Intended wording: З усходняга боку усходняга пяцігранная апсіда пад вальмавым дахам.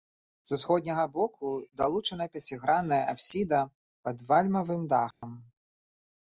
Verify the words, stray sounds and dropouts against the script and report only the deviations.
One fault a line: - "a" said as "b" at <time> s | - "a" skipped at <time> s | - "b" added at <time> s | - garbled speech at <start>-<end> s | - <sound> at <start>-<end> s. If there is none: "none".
- "усходняга" said as "далучана" at 1.8 s
- dropout at 5.1-5.2 s